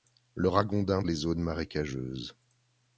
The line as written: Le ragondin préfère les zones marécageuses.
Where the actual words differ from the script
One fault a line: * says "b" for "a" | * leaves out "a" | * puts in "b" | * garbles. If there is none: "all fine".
* leaves out "préfère"